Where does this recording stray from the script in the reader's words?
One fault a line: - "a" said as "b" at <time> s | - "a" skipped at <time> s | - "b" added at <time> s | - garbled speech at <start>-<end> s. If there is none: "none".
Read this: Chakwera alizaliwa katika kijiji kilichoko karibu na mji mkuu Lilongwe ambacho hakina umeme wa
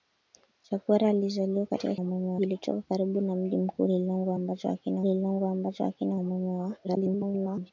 - "kijiji" said as "umeme" at 2.0 s
- "Lilongwe ambacho hakina" added at 5.0 s
- garbled speech at 6.8-7.7 s